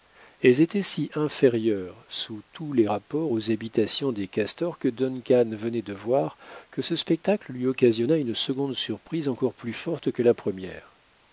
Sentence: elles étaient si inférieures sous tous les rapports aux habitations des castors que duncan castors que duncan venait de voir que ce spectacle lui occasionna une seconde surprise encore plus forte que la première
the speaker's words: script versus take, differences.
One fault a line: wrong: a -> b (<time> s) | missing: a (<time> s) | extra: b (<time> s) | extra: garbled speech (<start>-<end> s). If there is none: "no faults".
missing: castors que duncan (5.5 s)